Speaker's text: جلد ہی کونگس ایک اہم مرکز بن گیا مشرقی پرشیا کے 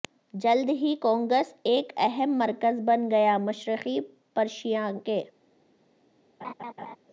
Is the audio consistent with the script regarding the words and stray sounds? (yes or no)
no